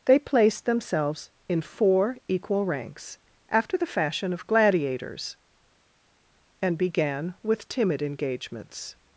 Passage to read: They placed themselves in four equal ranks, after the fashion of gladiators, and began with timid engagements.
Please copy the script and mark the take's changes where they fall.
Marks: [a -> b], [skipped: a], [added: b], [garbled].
They placed themselves in four equal ranks, after the fashion of gladiators, and began with timid engagements.